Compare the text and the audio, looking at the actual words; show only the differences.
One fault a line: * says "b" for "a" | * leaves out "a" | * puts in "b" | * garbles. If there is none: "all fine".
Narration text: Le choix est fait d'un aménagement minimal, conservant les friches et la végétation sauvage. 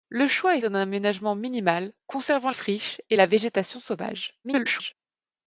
* leaves out "fait"
* leaves out "les"
* garbles